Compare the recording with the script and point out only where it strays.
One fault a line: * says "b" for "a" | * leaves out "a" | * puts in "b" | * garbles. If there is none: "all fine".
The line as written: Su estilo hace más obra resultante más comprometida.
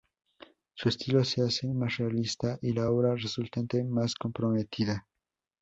* puts in "se"
* puts in "realista y la"